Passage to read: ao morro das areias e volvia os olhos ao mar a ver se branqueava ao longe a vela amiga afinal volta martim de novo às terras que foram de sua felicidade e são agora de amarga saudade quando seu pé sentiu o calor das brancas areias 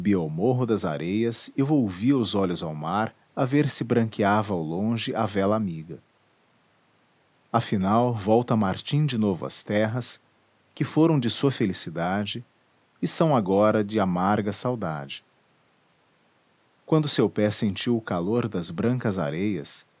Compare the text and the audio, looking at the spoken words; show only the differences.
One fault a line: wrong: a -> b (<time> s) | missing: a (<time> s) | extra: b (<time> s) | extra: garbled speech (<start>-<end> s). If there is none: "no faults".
no faults